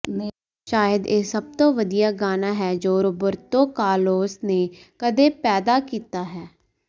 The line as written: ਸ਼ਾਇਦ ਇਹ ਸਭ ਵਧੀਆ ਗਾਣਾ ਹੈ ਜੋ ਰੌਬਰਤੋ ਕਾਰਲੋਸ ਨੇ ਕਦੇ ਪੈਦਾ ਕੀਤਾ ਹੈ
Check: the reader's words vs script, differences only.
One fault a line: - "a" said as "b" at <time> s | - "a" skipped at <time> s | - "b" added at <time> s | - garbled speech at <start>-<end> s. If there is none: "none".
- "ਤੋਂ" added at 1.6 s